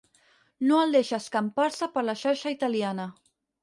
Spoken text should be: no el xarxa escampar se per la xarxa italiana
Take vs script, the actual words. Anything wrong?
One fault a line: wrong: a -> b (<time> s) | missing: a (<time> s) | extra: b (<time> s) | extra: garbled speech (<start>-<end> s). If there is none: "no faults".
wrong: xarxa -> deixa (1.0 s)